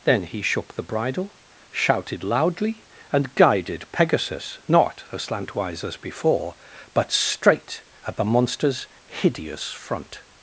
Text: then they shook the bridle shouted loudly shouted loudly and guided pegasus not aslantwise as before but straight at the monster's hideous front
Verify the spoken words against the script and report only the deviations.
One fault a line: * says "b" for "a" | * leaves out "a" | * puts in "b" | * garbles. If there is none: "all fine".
* says "he" for "they"
* leaves out "shouted loudly"